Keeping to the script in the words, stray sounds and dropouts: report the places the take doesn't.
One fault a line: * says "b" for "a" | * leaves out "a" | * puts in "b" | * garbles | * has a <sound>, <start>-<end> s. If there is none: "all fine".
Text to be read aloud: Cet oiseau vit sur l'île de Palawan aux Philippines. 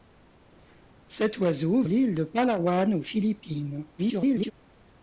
* leaves out "vit sur"
* garbles